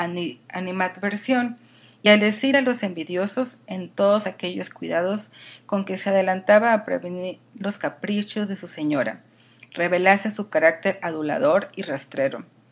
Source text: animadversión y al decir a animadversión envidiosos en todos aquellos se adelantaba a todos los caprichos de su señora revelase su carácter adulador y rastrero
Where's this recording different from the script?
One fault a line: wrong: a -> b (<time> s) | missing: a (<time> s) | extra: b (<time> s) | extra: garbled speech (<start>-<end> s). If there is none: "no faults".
wrong: animadversión -> los (2.6 s)
extra: cuidados con que (4.7 s)
wrong: todos -> prevenir (6.8 s)